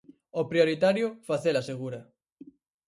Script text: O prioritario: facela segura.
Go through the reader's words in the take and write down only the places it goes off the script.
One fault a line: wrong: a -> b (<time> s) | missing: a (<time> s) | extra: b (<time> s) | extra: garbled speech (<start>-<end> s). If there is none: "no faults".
no faults